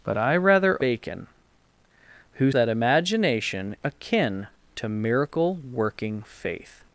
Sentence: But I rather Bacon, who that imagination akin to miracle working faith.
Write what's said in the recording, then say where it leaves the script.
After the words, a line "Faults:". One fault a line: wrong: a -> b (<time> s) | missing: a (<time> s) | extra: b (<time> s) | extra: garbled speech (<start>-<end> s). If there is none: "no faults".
But I rather Bacon, who that imagination akin to miracle working faith.
Faults:
no faults